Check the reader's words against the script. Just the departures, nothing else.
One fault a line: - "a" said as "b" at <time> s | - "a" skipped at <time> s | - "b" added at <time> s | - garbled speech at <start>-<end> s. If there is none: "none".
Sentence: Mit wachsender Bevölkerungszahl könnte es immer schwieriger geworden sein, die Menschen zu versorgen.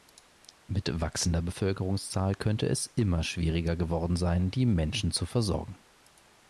none